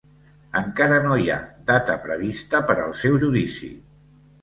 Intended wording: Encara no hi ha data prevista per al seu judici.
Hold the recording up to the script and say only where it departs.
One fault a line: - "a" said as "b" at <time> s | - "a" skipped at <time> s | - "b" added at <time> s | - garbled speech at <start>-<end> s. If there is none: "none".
none